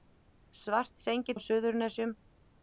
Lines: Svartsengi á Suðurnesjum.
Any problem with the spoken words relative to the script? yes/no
no